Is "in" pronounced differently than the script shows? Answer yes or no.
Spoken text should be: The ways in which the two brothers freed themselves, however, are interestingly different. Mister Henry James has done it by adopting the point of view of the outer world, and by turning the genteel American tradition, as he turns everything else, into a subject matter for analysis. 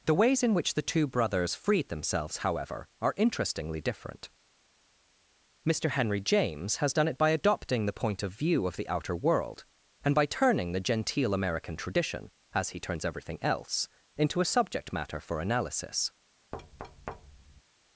no